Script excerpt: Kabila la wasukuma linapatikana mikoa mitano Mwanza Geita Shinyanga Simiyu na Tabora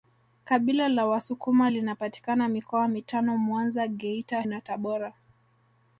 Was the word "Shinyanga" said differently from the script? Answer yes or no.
yes